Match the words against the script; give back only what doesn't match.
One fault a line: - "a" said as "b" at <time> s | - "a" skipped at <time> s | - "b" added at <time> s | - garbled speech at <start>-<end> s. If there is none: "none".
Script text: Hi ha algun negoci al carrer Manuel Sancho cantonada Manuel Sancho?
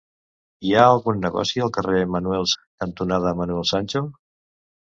- "Sancho" skipped at 2.5 s